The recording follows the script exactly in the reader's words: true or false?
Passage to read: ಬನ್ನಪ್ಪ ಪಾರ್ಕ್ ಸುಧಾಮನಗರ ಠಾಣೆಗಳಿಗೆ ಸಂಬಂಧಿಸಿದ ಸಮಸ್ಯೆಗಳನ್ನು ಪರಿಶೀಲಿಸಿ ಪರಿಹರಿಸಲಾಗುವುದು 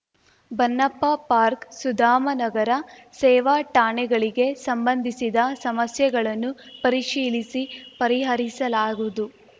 false